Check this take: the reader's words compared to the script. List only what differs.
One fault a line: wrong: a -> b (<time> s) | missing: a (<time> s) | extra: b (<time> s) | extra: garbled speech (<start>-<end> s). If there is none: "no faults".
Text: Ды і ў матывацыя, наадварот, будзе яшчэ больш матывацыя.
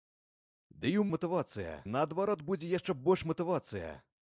no faults